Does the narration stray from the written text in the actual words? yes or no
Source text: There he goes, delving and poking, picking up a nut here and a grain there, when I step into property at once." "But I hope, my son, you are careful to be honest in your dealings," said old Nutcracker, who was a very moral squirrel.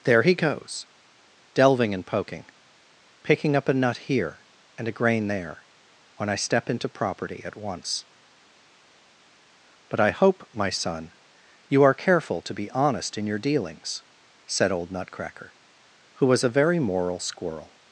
no